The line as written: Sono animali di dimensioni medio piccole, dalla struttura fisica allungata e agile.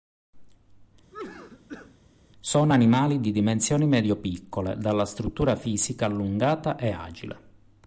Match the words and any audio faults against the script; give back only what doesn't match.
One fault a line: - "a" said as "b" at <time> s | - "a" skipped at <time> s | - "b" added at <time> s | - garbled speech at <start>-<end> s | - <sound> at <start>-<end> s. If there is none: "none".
- cough at 1.1-2.0 s